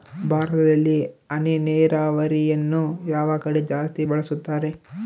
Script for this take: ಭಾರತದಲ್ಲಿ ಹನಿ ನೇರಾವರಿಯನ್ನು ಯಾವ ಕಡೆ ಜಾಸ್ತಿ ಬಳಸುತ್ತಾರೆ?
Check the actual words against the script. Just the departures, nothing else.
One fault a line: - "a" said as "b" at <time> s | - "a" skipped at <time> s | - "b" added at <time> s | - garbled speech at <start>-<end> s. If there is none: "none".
none